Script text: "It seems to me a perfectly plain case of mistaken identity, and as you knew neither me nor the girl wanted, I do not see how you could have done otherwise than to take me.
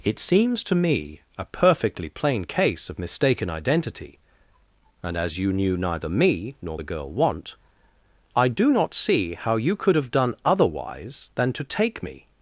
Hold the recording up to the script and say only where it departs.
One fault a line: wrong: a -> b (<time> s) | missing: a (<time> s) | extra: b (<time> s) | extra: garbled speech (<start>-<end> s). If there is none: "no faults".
wrong: wanted -> want (7.1 s)